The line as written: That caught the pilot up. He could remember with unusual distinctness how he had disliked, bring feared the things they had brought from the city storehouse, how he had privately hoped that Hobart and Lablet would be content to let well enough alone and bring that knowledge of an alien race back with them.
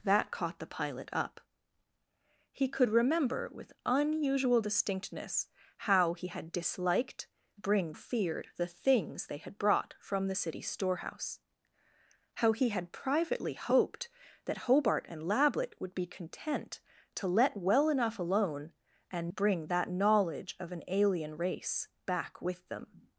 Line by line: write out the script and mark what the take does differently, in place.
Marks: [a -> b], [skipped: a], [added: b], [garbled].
That caught the pilot up. He could remember with unusual distinctness how he had disliked, bring feared the things they had brought from the city storehouse, how he had privately hoped that Hobart and Lablet would be content to let well enough alone and bring that knowledge of an alien race back with them.